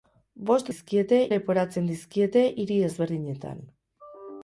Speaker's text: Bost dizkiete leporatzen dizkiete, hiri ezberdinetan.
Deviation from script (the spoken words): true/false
false